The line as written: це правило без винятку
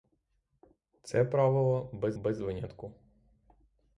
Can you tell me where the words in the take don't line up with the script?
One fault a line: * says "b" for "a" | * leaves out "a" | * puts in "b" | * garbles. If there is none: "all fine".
* puts in "без"